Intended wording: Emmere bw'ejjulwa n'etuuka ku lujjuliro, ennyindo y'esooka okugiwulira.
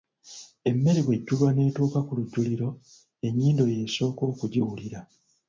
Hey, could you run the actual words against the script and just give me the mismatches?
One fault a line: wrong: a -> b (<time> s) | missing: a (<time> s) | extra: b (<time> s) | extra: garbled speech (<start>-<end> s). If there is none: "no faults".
no faults